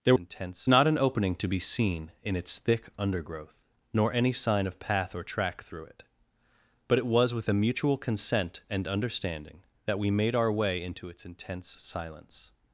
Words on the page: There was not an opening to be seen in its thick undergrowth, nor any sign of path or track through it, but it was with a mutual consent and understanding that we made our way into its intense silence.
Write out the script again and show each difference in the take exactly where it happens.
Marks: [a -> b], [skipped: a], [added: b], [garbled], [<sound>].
There [was -> intense] not an opening to be seen in its thick undergrowth, nor any sign of path or track through it, but it was with a mutual consent and understanding that we made our way into its intense silence.